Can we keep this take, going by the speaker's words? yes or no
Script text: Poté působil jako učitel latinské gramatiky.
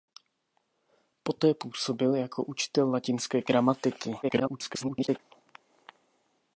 no